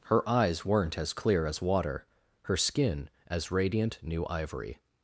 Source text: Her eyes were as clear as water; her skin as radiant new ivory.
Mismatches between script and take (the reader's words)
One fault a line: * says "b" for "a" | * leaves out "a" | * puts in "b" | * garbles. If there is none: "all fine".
* says "weren't" for "were"